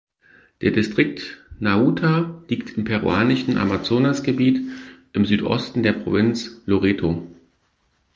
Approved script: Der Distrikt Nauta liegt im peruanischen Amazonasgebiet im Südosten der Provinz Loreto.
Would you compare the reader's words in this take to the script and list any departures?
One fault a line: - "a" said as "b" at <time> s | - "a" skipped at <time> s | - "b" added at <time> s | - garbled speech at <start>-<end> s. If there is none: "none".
none